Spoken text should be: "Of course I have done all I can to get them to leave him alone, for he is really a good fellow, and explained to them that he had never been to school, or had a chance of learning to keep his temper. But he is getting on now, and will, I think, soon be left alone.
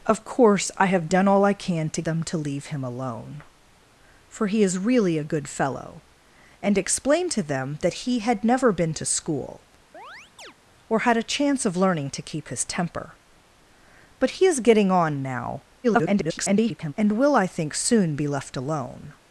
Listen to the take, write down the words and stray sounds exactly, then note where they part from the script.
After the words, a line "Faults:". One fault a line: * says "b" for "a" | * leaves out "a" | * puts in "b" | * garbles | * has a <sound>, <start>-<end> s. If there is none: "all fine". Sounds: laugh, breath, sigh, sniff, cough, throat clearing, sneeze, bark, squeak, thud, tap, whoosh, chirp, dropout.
"Of course I have done all I can to them to leave him alone, for he is really a good fellow, and explained to them that he had never been to school, or had a chance of learning to keep his temper. But he is getting on now, [garbled] and will, I think, soon be left alone.
Faults:
* leaves out "get"
* has a chirp, 9.9-10.5 s
* garbles